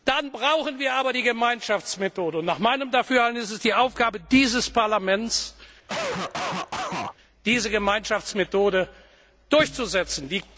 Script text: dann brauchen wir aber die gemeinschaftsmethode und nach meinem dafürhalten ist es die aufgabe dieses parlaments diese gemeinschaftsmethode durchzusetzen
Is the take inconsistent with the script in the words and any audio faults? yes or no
yes